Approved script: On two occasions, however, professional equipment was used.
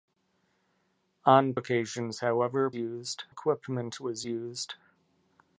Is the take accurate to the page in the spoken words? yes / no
no